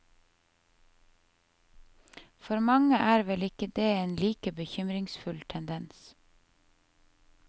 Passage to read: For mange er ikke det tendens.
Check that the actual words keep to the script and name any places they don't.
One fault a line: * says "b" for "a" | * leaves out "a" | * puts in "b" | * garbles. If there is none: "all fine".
* puts in "vel"
* puts in "en like bekymringsfull"